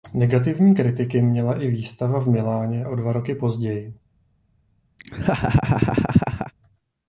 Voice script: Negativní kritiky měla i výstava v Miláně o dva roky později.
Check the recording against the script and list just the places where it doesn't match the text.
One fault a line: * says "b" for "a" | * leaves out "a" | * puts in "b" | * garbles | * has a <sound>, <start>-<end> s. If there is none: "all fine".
* has a laugh, 5.0-6.5 s